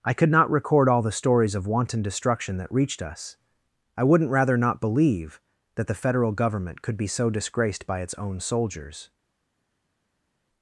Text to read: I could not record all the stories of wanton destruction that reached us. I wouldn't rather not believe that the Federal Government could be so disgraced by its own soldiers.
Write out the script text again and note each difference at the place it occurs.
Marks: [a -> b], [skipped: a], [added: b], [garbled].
I could not record all the stories of wanton destruction that reached us. I wouldn't rather not believe that the Federal Government could be so disgraced by its own soldiers.